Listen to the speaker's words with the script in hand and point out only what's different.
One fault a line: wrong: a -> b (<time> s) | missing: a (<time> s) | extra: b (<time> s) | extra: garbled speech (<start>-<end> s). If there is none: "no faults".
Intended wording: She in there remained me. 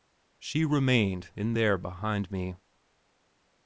extra: remained (0.7 s)
wrong: remained -> behind (1.8 s)